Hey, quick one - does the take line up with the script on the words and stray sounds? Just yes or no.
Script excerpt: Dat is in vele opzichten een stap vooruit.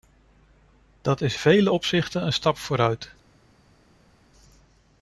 no